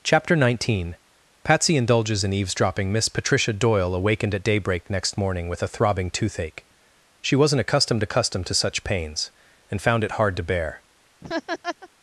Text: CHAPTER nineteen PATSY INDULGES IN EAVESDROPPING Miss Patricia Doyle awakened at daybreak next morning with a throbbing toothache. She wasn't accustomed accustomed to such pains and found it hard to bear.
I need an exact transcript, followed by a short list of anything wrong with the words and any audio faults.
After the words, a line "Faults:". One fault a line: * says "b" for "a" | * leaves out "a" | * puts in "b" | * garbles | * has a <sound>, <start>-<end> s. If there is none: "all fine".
CHAPTER nineteen PATSY INDULGES IN EAVESDROPPING Miss Patricia Doyle awakened at daybreak next morning with a throbbing toothache. She wasn't accustomed accustomed to such pains and found it hard to bear.
Faults:
* has a laugh, 11.2-11.9 s